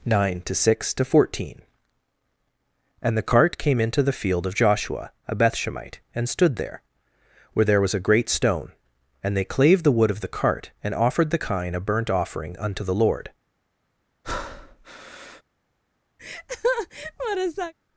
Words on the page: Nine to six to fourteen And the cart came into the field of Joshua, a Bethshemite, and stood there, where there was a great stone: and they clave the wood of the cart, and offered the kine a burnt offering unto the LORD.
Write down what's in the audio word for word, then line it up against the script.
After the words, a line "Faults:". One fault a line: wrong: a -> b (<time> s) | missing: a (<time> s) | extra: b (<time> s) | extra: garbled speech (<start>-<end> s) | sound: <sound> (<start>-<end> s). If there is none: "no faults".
Nine to six to fourteen And the cart came into the field of Joshua, a Bethshemite, and stood there, where there was a great stone: and they clave the wood of the cart, and offered the kine a burnt offering unto the LORD.
Faults:
sound: breath (14.2-15.4 s)
sound: laugh (16.2-17.7 s)